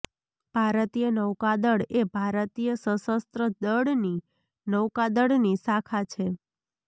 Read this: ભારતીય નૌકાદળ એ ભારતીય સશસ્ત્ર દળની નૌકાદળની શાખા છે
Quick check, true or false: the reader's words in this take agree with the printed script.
true